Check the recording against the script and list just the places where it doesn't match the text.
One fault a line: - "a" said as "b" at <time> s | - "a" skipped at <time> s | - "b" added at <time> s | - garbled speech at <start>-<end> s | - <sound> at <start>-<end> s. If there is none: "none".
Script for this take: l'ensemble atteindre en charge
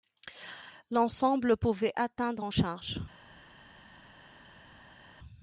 - "pouvait" added at 1.6 s